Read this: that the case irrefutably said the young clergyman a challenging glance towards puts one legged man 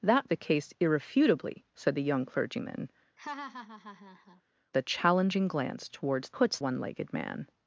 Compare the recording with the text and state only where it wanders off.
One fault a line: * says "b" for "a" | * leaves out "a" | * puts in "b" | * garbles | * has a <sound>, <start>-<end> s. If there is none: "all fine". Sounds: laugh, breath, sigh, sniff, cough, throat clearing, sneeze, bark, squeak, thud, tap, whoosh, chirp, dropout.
* has a laugh, 3.2-4.4 s